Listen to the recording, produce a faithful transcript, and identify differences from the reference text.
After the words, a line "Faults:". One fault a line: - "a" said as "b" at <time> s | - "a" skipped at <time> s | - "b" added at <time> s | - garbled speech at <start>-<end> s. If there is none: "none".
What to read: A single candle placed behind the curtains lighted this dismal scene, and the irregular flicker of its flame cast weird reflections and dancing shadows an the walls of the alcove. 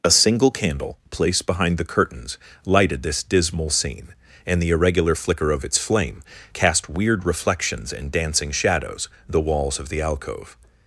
A single candle placed behind the curtains lighted this dismal scene, and the irregular flicker of its flame cast weird reflections and dancing shadows the walls of the alcove.
Faults:
- "an" skipped at 9.1 s